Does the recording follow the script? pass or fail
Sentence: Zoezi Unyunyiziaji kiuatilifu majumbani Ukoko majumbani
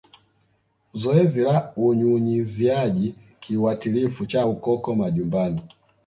fail